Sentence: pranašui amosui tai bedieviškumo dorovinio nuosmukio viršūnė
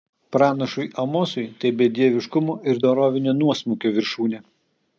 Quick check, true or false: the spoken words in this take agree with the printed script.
false